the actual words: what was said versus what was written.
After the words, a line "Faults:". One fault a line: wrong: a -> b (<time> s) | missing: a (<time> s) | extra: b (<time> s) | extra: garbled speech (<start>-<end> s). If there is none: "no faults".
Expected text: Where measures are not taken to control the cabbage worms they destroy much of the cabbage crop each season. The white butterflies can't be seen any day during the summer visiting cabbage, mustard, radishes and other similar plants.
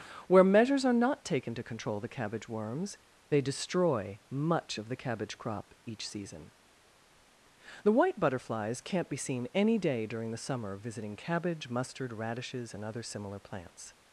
Where measures are not taken to control the cabbage worms they destroy much of the cabbage crop each season. The white butterflies can't be seen any day during the summer visiting cabbage, mustard, radishes and other similar plants.
Faults:
no faults